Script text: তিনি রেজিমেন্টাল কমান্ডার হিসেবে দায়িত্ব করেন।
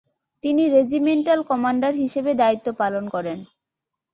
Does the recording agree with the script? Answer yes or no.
no